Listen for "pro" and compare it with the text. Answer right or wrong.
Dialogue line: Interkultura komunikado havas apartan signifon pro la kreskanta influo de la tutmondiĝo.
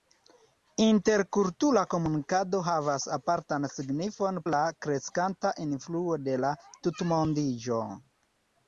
wrong